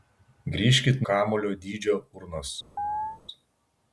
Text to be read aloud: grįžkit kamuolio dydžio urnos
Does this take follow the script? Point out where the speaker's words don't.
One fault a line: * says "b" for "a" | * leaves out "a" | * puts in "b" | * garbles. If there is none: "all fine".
all fine